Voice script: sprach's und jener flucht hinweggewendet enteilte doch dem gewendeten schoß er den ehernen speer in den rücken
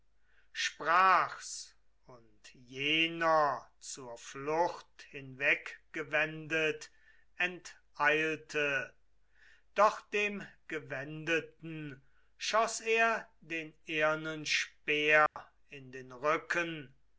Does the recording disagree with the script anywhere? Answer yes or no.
yes